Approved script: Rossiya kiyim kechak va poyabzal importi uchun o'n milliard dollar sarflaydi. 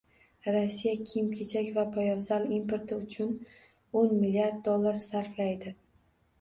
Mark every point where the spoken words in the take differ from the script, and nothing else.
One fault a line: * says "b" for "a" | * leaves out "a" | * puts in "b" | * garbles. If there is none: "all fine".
all fine